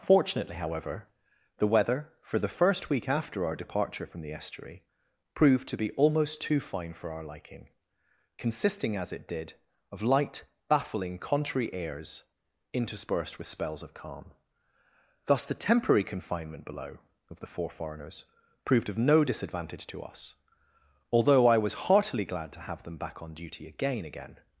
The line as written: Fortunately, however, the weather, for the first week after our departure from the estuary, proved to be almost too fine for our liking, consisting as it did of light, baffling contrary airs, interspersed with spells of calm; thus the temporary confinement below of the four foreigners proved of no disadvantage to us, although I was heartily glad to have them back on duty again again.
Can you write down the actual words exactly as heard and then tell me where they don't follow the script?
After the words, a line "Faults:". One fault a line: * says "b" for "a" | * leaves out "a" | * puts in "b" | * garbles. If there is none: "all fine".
Fortunately, however, the weather, for the first week after our departure from the estuary, proved to be almost too fine for our liking, consisting as it did of light, baffling contrary airs, interspersed with spells of calm; thus the temporary confinement below of the four foreigners proved of no disadvantage to us, although I was heartily glad to have them back on duty again again.
Faults:
all fine